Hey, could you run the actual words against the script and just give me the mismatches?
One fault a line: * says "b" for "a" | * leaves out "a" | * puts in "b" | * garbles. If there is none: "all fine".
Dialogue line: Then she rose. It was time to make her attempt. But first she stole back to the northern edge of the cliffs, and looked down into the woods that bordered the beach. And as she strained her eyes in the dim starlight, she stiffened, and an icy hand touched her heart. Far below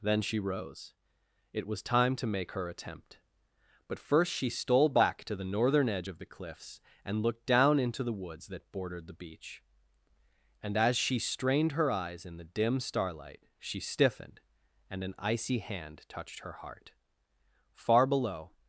all fine